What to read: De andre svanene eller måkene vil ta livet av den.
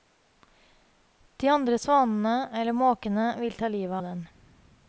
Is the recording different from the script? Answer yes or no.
yes